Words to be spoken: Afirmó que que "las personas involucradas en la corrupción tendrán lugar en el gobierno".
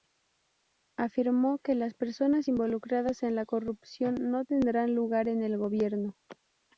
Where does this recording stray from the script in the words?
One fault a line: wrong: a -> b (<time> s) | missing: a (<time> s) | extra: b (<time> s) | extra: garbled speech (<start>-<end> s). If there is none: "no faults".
missing: que (1.8 s)
extra: no (4.2 s)